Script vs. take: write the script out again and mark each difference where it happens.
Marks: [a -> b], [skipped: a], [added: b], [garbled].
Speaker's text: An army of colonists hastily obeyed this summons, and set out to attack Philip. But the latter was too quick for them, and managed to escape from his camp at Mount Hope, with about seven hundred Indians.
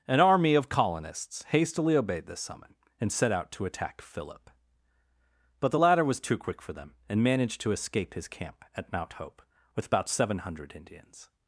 An army of colonists hastily obeyed this [summons, -> summon] and set out to attack Philip. But the latter was too quick for them, and managed to escape [skipped: from] his camp at Mount Hope, with about seven hundred Indians.